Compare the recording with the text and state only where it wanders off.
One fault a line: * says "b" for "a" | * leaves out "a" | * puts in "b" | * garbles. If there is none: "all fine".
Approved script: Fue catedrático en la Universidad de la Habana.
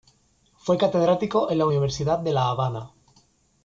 all fine